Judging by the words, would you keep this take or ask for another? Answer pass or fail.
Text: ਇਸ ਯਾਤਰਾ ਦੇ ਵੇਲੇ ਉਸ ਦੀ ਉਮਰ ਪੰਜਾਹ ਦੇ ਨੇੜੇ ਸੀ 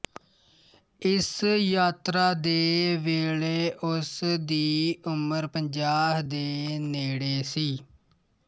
pass